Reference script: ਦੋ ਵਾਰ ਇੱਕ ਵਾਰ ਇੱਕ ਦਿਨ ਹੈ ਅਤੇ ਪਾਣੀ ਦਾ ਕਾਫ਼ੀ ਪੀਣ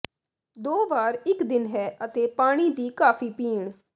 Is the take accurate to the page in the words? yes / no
no